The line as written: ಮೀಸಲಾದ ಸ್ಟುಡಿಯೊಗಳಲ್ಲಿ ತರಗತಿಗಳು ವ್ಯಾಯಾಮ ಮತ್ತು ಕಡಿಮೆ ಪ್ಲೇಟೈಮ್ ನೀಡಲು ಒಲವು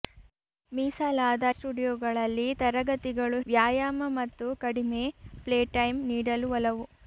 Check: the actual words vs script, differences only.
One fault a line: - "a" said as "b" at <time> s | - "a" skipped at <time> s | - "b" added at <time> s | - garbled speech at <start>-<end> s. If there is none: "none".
none